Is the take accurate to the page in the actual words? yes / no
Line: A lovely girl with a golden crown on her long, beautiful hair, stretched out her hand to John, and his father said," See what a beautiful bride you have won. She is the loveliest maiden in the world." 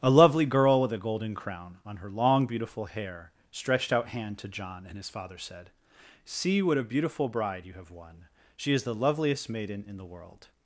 no